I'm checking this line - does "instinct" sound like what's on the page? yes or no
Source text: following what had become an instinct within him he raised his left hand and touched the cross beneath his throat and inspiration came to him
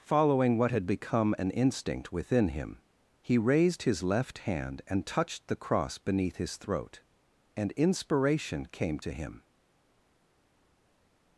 yes